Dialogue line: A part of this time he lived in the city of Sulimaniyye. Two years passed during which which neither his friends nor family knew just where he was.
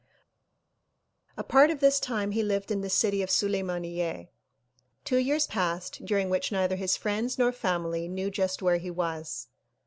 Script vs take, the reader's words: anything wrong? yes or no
yes